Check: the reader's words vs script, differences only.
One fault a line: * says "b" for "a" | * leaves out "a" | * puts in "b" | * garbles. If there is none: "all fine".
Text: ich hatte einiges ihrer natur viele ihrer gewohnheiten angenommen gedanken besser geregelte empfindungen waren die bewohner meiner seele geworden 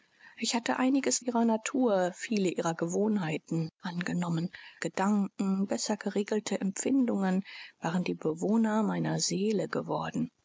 all fine